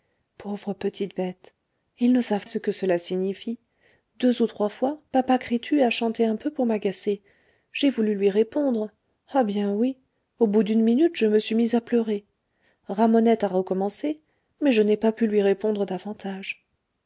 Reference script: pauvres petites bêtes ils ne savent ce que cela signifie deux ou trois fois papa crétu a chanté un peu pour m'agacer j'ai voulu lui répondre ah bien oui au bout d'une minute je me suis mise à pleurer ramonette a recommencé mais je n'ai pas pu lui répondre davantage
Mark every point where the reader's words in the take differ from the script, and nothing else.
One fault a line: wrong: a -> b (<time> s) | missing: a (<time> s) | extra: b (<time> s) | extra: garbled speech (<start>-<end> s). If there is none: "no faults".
no faults